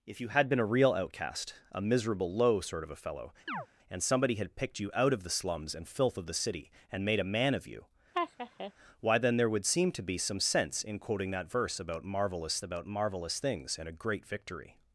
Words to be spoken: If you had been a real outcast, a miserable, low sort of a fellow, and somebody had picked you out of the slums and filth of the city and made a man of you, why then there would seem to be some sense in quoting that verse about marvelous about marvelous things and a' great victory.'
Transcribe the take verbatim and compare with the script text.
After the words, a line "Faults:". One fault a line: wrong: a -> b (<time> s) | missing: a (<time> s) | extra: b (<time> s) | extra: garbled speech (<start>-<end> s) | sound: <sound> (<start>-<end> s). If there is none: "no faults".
If you had been a real outcast, a miserable, low sort of a fellow, and somebody had picked you out of the slums and filth of the city and made a man of you, why then there would seem to be some sense in quoting that verse about marvelous about marvelous things and a' great victory.'
Faults:
sound: chirp (3.5-3.7 s)
sound: laugh (8.1-8.7 s)